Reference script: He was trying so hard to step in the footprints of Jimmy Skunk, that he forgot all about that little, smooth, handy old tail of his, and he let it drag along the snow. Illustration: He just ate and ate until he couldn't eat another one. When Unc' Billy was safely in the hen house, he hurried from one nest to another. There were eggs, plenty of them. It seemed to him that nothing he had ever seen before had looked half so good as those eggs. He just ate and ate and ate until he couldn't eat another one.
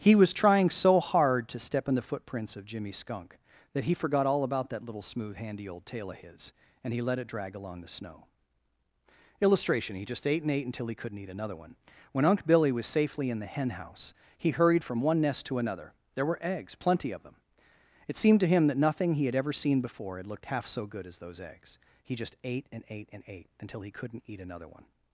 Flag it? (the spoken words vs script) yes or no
no